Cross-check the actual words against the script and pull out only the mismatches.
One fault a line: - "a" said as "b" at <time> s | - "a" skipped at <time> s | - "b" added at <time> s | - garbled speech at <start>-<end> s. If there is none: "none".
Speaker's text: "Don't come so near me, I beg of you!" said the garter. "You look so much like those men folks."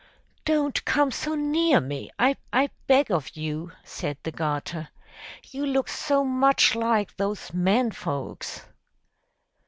- "I" added at 2.5 s